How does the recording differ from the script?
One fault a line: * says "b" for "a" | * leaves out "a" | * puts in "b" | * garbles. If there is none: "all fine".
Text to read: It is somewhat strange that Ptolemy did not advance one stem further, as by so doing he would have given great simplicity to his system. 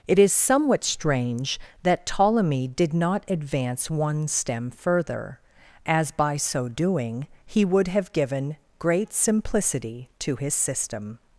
all fine